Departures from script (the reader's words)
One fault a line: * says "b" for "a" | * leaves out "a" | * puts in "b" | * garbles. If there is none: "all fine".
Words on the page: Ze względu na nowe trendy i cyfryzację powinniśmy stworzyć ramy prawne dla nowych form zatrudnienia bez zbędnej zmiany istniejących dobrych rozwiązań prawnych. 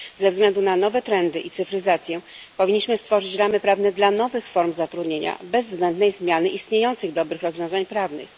all fine